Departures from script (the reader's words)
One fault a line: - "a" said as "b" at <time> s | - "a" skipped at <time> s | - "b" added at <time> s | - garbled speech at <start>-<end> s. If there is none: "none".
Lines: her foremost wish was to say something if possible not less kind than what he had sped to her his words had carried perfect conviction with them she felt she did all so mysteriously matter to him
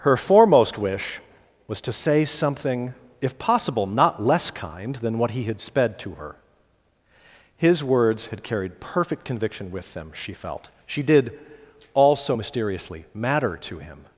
none